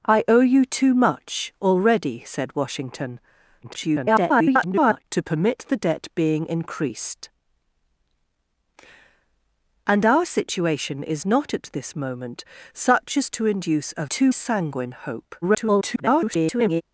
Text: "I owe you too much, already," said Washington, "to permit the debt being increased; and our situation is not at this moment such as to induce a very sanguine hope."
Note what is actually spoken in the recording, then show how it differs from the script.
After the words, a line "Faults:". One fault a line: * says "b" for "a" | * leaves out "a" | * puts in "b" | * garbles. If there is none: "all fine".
"I owe you too much, already," said Washington, [garbled] "to permit the debt being increased; and our situation is not at this moment such as to induce a too sanguine hope." [garbled]
Faults:
* garbles
* says "too" for "very"
* garbles